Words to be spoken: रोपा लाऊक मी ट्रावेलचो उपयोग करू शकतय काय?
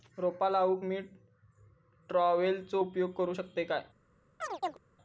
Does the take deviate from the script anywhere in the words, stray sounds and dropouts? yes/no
yes